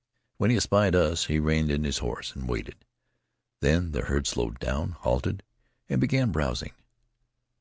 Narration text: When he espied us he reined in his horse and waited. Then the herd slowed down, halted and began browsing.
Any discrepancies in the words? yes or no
no